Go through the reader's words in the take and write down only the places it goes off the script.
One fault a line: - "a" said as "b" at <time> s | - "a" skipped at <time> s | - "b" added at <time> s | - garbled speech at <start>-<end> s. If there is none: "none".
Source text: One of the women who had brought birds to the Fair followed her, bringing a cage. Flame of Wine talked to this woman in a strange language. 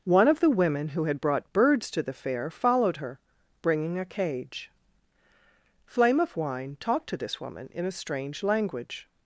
none